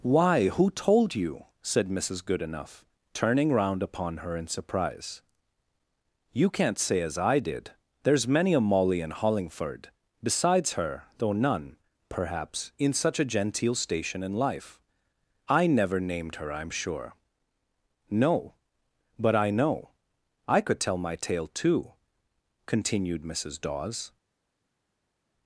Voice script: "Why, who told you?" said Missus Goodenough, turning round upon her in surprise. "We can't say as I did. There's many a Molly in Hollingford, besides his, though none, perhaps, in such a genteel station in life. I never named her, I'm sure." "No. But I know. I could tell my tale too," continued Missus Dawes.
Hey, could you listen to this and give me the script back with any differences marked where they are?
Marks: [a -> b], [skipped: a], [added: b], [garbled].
"Why, who told you?" said Missus Goodenough, turning round upon her in surprise. ["We -> You] can't say as I did. There's many a Molly in Hollingford, besides [his, -> her] though none, perhaps, in such a genteel station in life. I never named her, I'm sure." "No. But I know. I could tell my tale too," continued Missus Dawes.